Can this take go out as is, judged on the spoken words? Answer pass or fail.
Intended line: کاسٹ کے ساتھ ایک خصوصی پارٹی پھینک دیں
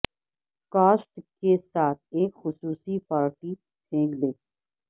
pass